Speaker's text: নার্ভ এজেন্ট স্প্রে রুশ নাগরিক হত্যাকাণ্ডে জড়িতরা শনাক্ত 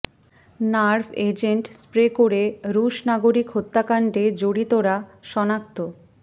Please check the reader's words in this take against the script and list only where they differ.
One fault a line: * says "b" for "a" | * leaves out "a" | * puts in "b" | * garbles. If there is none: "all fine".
* puts in "করে"